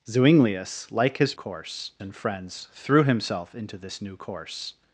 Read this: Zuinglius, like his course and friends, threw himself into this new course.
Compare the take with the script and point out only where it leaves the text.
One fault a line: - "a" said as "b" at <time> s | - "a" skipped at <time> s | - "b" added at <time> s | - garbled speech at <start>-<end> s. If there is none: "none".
none